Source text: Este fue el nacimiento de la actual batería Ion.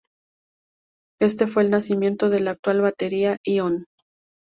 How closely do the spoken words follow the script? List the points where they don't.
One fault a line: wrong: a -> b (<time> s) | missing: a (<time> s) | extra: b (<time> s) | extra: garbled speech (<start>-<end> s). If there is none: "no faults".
no faults